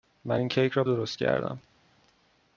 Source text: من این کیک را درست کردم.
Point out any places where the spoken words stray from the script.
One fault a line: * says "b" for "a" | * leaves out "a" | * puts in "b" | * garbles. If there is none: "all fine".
all fine